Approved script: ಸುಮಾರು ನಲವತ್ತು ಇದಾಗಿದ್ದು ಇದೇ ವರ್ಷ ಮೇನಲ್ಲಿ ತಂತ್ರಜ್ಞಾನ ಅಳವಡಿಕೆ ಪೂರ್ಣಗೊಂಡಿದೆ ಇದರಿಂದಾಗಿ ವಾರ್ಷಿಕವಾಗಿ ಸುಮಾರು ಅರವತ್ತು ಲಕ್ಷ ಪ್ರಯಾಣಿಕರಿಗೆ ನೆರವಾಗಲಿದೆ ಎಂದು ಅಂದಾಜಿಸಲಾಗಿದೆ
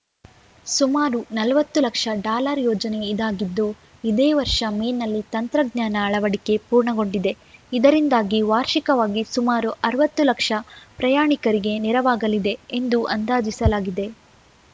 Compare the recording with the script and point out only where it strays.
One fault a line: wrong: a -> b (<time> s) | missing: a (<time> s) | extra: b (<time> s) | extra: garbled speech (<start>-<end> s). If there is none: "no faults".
extra: ಲಕ್ಷ ಡಾಲರ್ ಯೋಜನೆ (1.8 s)